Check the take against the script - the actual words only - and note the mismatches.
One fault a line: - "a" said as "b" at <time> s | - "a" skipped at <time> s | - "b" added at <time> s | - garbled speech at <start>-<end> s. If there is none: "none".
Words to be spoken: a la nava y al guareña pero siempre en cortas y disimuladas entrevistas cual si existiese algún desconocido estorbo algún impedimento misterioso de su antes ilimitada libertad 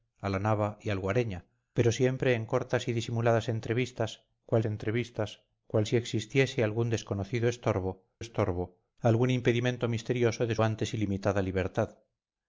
- "entrevistas cual" added at 4.7 s
- "estorbo" added at 8.2 s
- "su" skipped at 10.6 s